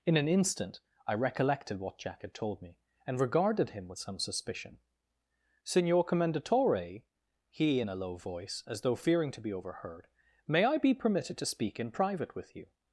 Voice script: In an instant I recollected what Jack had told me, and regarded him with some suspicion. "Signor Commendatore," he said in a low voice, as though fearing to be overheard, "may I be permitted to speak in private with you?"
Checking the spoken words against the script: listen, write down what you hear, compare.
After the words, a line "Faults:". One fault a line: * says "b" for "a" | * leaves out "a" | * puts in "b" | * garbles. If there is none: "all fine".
In an instant I recollected what Jack had told me, and regarded him with some suspicion. "Signor Commendatore," he in a low voice, as though fearing to be overheard, "may I be permitted to speak in private with you?"
Faults:
* leaves out "said"